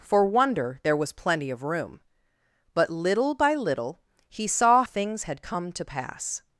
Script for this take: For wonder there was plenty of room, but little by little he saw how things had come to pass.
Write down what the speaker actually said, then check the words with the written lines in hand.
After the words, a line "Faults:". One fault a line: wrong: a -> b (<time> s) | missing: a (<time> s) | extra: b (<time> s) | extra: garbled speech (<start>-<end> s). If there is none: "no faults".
For wonder there was plenty of room, but little by little he saw things had come to pass.
Faults:
missing: how (4.8 s)